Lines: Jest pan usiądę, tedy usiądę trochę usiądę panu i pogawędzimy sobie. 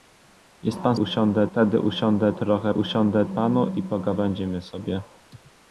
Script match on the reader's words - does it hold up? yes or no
yes